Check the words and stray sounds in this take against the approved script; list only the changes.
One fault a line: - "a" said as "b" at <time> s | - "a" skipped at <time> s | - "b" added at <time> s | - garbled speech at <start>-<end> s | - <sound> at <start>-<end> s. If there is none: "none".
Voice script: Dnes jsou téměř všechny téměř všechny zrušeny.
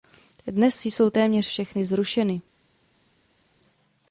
- "téměř všechny" skipped at 1.8 s